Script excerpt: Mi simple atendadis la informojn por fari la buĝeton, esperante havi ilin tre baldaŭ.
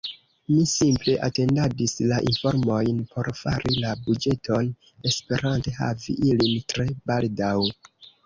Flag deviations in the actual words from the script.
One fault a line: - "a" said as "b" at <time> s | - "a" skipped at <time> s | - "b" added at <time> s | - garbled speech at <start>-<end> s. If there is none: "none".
none